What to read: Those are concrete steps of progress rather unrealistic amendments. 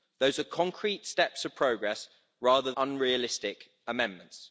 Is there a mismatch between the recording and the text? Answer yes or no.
no